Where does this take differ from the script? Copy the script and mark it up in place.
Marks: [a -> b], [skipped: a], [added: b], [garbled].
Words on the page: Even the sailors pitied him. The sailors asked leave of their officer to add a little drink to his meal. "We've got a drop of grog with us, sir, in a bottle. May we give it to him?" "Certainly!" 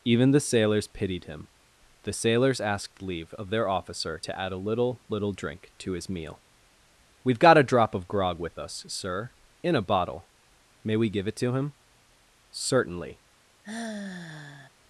Even the sailors pitied him. The sailors asked leave of their officer to add a little [added: little] drink to his meal. "We've got a drop of grog with us, sir, in a bottle. May we give it to him?" "Certainly!"